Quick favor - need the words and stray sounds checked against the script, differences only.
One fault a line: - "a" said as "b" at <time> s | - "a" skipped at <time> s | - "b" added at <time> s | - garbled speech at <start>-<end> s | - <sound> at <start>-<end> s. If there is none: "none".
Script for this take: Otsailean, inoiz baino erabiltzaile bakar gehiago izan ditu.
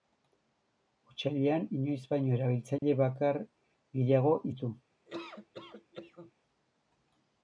- dropout at 2.8-2.8 s
- "izan" skipped at 4.3 s
- laugh at 5.1-6.3 s